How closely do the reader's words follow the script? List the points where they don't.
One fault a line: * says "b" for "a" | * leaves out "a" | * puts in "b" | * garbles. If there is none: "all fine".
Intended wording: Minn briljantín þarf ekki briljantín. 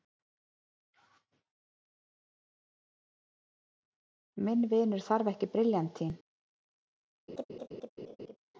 * says "vinur" for "briljantín"